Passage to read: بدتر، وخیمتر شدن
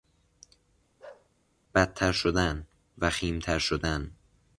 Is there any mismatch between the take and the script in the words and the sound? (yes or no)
yes